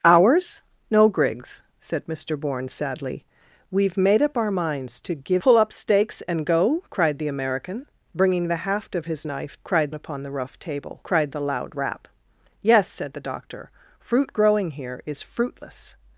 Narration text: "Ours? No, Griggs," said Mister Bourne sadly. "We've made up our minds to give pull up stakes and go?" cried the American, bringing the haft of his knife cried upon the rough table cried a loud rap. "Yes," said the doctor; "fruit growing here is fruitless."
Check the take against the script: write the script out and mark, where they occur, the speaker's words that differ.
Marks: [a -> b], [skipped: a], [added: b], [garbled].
"Ours? No, Griggs," said Mister Bourne sadly. "We've made up our minds to give pull up stakes and go?" cried the American, bringing the haft of his knife cried upon the rough table cried a loud rap. "Yes," said the doctor; "fruit growing here is fruitless."